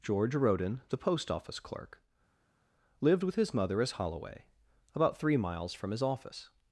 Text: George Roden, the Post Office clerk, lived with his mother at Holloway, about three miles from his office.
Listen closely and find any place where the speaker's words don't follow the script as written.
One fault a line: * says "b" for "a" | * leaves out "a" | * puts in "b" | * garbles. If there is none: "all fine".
* says "as" for "at"